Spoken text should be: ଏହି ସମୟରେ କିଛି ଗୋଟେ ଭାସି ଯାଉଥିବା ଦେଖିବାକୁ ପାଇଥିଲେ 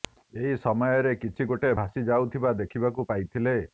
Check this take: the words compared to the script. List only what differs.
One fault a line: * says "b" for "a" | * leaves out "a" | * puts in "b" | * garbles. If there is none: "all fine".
all fine